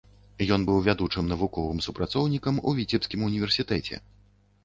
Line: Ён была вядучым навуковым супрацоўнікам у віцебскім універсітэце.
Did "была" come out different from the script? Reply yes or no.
yes